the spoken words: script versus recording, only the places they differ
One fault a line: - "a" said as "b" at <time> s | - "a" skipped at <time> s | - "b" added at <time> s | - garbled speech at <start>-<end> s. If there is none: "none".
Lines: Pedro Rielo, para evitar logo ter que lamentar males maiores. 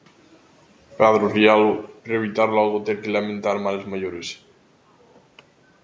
none